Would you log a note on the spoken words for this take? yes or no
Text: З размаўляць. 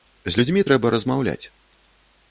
yes